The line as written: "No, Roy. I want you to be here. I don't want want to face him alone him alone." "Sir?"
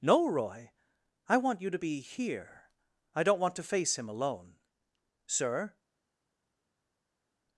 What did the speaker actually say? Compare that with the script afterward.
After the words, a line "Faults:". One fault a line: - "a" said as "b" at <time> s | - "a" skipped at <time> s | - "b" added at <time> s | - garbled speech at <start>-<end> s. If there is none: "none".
"No, Roy. I want you to be here. I don't want to face him alone." "Sir?"
Faults:
- "want" skipped at 3.6 s
- "him alone" skipped at 4.6 s